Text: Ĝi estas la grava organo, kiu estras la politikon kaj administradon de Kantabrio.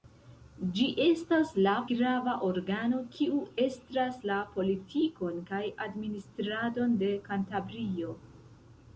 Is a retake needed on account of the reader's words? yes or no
no